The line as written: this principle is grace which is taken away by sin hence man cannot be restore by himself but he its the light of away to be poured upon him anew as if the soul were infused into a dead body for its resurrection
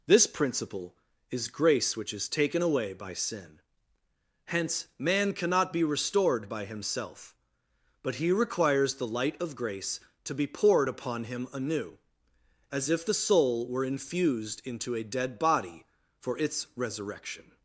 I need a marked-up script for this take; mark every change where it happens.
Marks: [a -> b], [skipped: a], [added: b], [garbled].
this principle is grace which is taken away by sin hence man cannot be [restore -> restored] by himself but he [its -> requires] the light of [away -> grace] to be poured upon him anew as if the soul were infused into a dead body for its resurrection